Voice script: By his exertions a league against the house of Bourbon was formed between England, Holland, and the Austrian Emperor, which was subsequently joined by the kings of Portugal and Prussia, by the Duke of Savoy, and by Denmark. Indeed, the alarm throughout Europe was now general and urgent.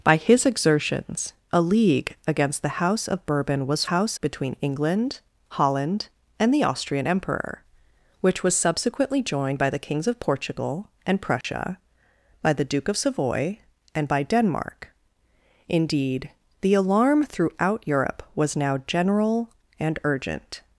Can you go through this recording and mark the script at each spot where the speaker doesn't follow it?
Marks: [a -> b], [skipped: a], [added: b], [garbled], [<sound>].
By his exertions a league against the house of Bourbon was [formed -> house] between England, Holland, and the Austrian Emperor, which was subsequently joined by the kings of Portugal and Prussia, [dropout] by the Duke of Savoy, and by Denmark. Indeed, the alarm throughout Europe was now general and urgent.